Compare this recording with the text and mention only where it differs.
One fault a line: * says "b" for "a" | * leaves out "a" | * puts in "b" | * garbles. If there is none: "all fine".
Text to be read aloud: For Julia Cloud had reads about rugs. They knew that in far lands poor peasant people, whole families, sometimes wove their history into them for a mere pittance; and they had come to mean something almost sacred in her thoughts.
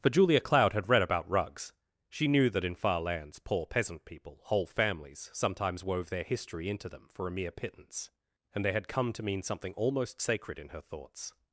* says "read" for "reads"
* says "She" for "They"